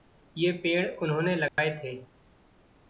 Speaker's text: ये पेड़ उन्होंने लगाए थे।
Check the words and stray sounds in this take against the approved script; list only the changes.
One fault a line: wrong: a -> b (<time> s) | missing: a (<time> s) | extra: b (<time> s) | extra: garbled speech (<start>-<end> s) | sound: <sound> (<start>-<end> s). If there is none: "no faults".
sound: dropout (1.5-1.6 s)